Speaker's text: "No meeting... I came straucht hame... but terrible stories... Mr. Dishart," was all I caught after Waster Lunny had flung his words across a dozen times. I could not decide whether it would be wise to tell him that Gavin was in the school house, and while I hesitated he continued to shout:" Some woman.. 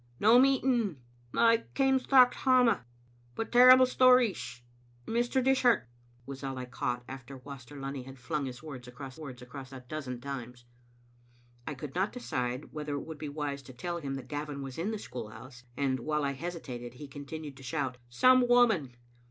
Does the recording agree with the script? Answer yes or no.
no